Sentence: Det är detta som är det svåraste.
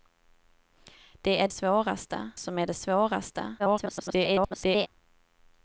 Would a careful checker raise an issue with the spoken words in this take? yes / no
yes